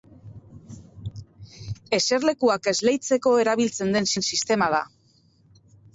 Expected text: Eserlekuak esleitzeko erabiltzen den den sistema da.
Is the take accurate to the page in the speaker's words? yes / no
yes